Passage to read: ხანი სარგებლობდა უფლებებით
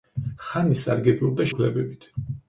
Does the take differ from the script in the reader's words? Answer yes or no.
no